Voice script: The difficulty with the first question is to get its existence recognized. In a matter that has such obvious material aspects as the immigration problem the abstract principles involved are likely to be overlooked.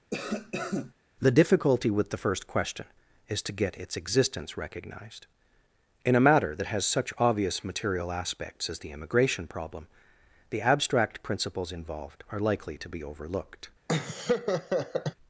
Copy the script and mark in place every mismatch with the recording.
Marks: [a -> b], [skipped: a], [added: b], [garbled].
The difficulty with the first question is to get its existence recognized. In a matter that has such obvious material aspects as the immigration problem the abstract principles involved are likely to be overlooked.